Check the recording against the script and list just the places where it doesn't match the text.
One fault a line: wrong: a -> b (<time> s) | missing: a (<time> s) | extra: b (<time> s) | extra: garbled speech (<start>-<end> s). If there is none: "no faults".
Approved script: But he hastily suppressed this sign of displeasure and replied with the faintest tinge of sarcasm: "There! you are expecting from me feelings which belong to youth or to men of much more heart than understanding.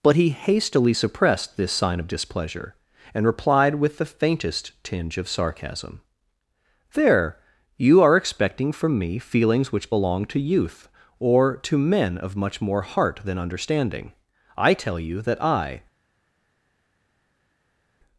extra: I tell you that I (14.5 s)